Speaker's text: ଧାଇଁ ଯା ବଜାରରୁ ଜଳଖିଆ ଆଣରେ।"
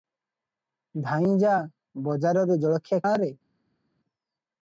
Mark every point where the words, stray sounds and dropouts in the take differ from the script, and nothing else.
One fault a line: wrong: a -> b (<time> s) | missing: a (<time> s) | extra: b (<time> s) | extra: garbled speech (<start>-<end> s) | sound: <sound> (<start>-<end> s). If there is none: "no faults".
no faults